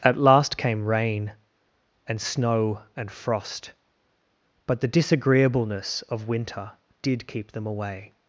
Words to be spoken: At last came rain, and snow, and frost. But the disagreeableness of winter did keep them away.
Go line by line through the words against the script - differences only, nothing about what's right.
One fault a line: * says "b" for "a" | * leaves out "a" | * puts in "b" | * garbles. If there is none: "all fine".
all fine